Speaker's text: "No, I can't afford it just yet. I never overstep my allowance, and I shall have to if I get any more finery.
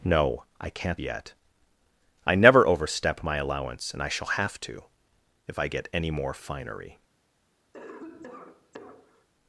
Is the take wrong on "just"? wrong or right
wrong